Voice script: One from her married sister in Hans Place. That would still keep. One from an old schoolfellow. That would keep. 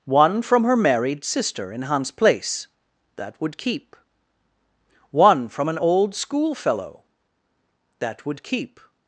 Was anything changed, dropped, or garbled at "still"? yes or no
yes